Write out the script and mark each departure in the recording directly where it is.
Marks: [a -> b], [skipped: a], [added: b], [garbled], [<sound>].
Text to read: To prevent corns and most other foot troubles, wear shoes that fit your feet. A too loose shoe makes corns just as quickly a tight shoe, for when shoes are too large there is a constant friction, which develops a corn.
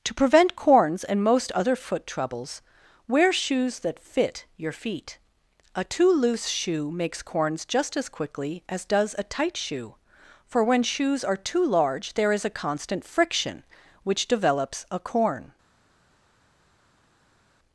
To prevent corns and most other foot troubles, wear shoes that fit your feet. A too loose shoe makes corns just as quickly [added: as does] a tight shoe, for when shoes are too large there is a constant friction, which develops a corn.